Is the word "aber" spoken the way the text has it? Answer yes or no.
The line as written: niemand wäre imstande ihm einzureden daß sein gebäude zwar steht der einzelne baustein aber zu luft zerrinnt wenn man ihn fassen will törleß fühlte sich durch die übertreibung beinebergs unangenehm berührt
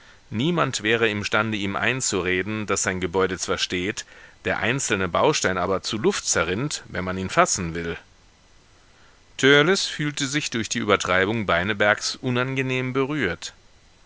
yes